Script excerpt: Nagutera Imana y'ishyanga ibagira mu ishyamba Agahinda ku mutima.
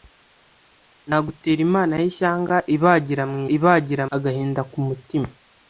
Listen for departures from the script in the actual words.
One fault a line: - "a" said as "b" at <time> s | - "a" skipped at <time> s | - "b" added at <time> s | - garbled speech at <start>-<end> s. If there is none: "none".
- "ishyamba" said as "ibagira" at 3.6 s